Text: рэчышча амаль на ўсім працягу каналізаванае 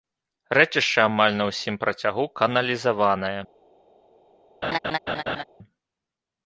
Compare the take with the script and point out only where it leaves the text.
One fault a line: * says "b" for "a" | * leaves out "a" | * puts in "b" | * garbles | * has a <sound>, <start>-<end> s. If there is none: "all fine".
* has a laugh, 4.6-5.4 s